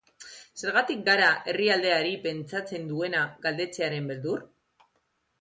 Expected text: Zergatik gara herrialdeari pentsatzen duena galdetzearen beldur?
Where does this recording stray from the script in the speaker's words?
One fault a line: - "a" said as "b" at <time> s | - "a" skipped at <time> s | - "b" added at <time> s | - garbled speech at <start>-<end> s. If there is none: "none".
none